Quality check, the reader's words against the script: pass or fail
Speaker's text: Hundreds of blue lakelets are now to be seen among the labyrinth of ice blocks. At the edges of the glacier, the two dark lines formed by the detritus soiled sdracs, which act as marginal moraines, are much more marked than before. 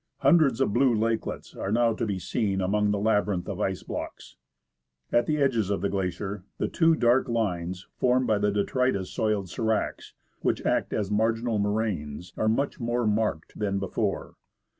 pass